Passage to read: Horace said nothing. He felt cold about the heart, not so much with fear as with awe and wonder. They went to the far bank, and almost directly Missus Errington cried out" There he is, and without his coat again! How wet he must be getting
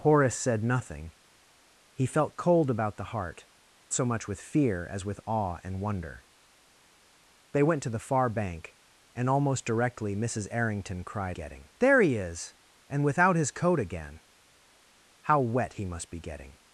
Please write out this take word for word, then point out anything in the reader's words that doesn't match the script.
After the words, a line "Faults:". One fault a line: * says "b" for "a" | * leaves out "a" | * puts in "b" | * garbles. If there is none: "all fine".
Horace said nothing. He felt cold about the heart, so much with fear as with awe and wonder. They went to the far bank, and almost directly Missus Errington cried getting" There he is, and without his coat again! How wet he must be getting
Faults:
* leaves out "not"
* says "getting" for "out"